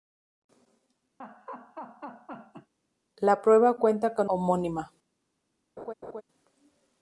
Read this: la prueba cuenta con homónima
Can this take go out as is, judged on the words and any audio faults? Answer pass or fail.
fail